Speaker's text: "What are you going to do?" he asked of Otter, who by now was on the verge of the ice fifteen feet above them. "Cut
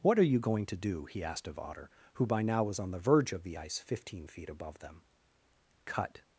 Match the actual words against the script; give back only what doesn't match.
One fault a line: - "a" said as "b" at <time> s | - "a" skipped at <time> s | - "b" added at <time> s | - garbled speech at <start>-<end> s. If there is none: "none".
none